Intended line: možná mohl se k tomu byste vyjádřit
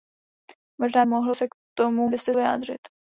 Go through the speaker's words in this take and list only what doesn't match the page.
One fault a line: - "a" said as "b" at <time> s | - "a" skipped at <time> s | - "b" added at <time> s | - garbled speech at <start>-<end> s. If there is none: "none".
none